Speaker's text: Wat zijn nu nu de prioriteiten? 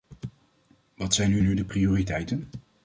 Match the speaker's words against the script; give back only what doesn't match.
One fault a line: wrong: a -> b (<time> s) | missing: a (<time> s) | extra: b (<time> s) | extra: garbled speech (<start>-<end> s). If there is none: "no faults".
no faults